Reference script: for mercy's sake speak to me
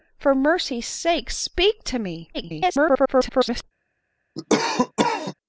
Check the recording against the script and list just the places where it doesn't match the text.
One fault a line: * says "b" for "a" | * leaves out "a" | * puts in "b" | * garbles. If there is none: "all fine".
* garbles